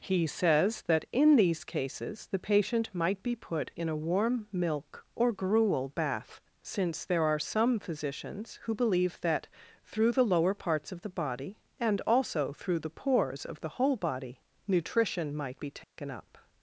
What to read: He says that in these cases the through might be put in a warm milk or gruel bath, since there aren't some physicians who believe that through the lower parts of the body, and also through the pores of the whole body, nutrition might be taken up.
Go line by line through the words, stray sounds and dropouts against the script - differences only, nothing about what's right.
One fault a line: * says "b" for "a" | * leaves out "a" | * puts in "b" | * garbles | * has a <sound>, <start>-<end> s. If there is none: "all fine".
* says "patient" for "through"
* says "are" for "aren't"
* has a dropout, 15.8-16.0 s